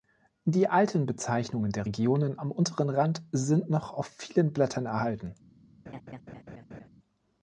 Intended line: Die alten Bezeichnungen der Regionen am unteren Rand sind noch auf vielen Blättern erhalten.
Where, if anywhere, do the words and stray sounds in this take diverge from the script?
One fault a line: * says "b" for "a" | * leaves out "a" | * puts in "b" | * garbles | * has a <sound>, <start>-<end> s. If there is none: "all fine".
* has a laugh, 5.9-6.9 s